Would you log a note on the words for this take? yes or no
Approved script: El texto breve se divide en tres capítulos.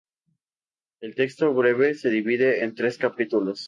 no